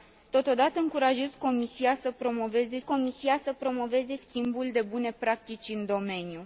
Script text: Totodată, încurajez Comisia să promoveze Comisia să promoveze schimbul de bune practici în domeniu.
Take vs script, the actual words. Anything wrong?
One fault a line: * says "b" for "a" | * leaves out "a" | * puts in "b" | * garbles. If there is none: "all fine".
all fine